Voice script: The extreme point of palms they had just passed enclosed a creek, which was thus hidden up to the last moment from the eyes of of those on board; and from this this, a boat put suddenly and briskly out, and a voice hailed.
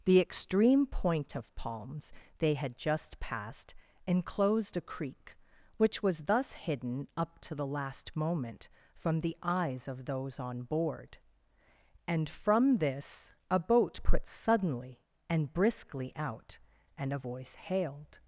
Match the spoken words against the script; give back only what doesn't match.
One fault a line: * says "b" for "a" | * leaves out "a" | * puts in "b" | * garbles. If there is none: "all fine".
* leaves out "of"
* leaves out "this"